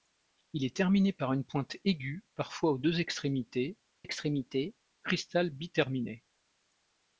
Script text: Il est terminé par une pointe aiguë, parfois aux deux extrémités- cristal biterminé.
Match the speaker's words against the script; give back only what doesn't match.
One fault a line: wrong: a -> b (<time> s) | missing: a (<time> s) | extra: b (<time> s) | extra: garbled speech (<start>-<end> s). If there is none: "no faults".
extra: extrémités (4.0 s)